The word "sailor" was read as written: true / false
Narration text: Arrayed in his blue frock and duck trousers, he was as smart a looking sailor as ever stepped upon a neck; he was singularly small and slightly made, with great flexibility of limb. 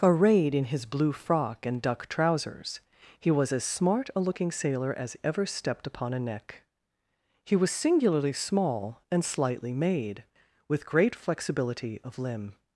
true